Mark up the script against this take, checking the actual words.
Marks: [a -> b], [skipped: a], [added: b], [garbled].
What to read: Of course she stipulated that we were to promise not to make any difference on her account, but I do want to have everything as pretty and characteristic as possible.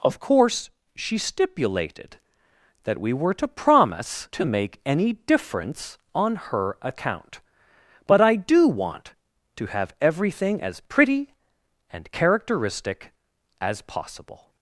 Of course she stipulated that we were to promise [skipped: not] to make any difference on her account, but I do want to have everything as pretty and characteristic as possible.